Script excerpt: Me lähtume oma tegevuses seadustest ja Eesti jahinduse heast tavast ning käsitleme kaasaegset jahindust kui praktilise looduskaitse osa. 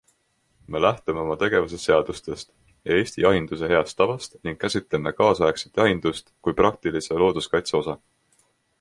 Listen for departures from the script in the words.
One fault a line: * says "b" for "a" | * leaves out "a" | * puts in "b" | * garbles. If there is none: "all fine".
all fine